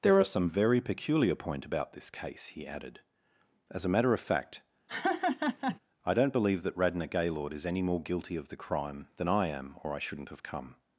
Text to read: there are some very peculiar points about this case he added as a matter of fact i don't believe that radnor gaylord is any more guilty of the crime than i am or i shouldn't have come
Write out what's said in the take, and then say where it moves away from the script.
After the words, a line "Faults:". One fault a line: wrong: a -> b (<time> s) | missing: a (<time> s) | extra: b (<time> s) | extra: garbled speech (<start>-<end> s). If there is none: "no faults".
there are some very peculiar point about this case he added as a matter of fact i don't believe that radnor gaylord is any more guilty of the crime than i am or i shouldn't have come
Faults:
wrong: points -> point (1.4 s)